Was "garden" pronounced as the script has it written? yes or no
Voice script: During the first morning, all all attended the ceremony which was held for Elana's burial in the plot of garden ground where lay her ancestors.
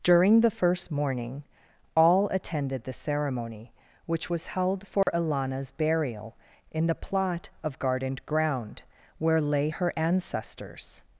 no